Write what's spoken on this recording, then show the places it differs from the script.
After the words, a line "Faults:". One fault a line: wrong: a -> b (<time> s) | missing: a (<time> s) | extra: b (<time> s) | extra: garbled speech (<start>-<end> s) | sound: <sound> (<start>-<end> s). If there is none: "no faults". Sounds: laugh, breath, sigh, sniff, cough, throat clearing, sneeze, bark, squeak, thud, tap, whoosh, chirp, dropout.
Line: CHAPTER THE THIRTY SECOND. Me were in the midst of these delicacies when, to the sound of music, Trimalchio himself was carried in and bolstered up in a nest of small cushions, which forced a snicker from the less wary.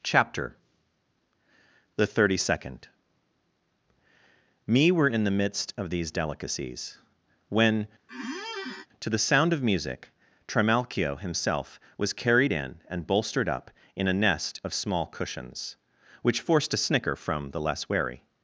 CHAPTER THE THIRTY SECOND. Me were in the midst of these delicacies when, to the sound of music, Trimalchio himself was carried in and bolstered up in a nest of small cushions, which forced a snicker from the less wary.
Faults:
sound: squeak (8.1-8.9 s)